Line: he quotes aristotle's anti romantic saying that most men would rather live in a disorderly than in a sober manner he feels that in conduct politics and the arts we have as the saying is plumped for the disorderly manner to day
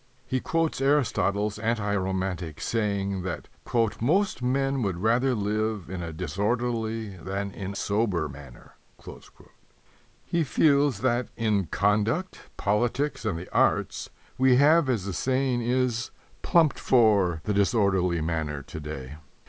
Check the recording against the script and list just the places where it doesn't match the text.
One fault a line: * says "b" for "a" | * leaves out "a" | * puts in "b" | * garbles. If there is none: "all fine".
* leaves out "a"